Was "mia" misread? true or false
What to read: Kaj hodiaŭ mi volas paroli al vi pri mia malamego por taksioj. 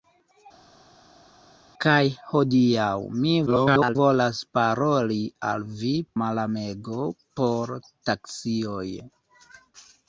true